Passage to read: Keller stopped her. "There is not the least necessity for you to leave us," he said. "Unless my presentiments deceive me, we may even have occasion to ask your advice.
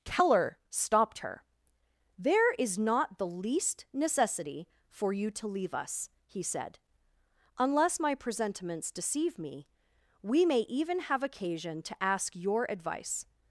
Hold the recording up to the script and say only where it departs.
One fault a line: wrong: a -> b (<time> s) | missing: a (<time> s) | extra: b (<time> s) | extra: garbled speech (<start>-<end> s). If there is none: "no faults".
no faults